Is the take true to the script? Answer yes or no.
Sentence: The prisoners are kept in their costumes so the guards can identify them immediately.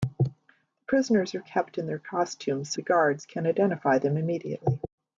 no